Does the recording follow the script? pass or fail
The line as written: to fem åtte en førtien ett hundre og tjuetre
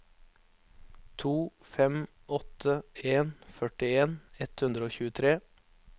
pass